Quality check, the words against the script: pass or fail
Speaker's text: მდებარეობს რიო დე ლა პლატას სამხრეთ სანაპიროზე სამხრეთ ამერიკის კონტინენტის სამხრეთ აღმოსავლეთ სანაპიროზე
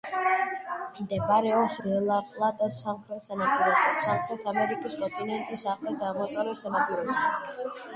fail